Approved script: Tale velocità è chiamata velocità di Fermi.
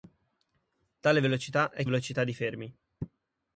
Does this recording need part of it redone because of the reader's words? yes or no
yes